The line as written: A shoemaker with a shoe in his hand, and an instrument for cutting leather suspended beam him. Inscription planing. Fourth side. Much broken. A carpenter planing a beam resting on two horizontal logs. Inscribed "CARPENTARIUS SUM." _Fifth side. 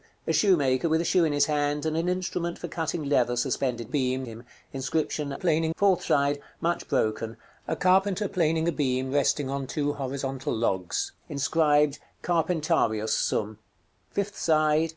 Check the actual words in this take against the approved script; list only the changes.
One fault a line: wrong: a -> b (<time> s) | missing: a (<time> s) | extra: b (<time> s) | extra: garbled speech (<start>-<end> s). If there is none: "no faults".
no faults